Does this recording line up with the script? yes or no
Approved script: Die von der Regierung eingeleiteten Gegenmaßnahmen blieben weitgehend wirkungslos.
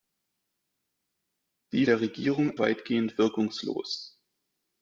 no